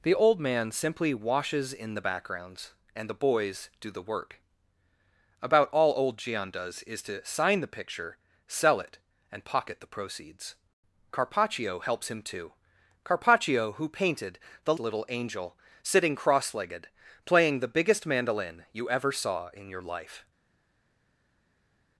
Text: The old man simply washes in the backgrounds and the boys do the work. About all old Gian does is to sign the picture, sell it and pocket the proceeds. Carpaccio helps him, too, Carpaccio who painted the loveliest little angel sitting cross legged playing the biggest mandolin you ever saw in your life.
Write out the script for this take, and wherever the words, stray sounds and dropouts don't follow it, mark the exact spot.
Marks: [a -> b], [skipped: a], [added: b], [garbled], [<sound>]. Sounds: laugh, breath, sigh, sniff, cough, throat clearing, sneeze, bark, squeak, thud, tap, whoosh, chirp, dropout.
The old man simply washes in the backgrounds and the boys do the work. About all old Gian does is to sign the picture, sell it and pocket the proceeds. Carpaccio helps him, too, Carpaccio who painted the [skipped: loveliest] little angel sitting cross legged playing the biggest mandolin you ever saw in your life.